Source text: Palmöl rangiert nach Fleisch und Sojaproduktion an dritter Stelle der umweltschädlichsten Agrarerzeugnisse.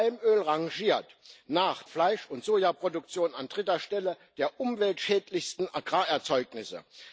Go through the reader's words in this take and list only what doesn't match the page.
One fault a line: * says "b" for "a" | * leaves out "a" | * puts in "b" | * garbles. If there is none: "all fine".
all fine